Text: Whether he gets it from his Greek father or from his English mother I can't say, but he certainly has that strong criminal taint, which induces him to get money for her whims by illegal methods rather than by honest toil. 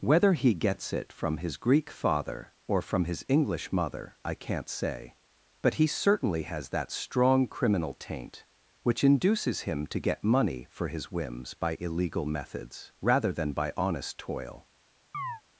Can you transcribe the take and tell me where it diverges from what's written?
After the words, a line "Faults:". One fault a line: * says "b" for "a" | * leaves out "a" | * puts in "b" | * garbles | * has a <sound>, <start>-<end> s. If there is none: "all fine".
Whether he gets it from his Greek father or from his English mother I can't say, but he certainly has that strong criminal taint, which induces him to get money for his whims by illegal methods rather than by honest toil.
Faults:
* says "his" for "her"
* has a chirp, 15.1-15.4 s